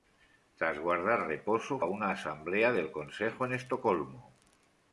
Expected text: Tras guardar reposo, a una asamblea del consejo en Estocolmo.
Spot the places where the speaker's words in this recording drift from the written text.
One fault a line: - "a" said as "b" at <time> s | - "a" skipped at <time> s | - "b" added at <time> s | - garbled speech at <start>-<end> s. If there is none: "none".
none